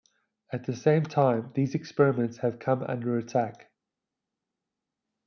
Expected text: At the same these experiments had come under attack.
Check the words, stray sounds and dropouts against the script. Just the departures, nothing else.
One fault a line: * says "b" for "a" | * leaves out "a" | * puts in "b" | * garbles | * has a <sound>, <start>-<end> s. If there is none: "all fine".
* puts in "time"
* says "have" for "had"